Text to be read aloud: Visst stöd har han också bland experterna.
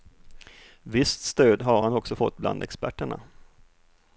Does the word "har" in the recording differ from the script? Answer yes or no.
no